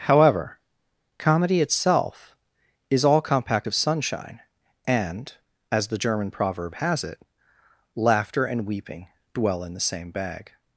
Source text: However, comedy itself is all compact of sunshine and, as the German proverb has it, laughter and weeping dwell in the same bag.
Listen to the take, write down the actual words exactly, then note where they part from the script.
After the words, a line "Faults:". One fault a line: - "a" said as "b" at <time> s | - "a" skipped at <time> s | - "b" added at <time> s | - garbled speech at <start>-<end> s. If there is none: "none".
However, comedy itself is all compact of sunshine and, as the German proverb has it, laughter and weeping dwell in the same bag.
Faults:
none